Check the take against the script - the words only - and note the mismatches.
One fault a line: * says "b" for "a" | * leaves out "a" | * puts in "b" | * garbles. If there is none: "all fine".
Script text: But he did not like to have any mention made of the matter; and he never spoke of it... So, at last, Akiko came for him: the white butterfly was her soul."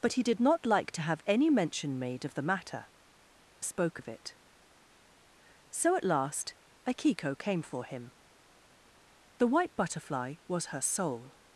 * leaves out "and he never"